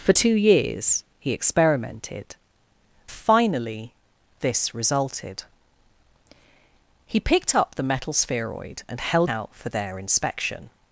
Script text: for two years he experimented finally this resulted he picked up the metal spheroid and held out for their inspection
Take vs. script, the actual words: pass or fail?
pass